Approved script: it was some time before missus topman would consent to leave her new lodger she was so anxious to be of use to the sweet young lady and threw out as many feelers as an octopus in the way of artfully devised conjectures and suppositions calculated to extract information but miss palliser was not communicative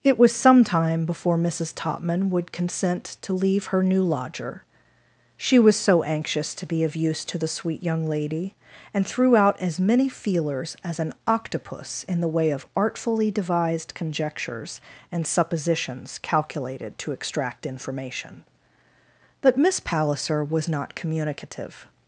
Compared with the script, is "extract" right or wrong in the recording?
right